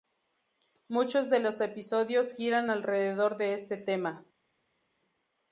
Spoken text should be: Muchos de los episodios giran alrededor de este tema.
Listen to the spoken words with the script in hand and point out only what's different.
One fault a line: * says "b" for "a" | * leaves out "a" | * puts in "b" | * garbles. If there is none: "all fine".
all fine